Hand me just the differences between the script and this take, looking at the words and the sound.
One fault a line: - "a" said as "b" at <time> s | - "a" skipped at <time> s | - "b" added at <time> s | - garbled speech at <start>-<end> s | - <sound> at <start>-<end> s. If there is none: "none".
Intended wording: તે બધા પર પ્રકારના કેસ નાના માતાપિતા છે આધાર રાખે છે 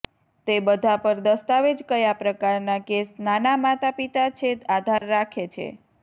- "દસ્તાવેજ કયા" added at 1.2 s
- dropout at 5.0-5.0 s